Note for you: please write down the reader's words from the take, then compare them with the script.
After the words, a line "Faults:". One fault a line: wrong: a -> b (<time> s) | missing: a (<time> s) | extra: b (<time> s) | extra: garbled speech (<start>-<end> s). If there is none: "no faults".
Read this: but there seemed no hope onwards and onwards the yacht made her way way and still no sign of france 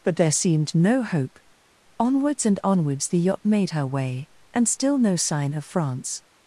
but there seemed no hope onwards and onwards the yacht made her way and still no sign of france
Faults:
missing: way (4.3 s)